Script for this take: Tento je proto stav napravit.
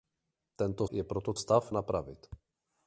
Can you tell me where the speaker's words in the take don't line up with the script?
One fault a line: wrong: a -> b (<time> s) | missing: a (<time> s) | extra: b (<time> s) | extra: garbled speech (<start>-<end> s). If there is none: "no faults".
no faults